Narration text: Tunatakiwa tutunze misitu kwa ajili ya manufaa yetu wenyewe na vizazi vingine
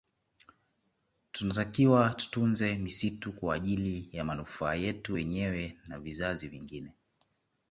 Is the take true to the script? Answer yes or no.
yes